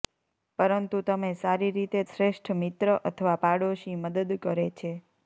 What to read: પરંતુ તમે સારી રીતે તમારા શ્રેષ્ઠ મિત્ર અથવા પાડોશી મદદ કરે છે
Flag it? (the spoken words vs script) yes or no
yes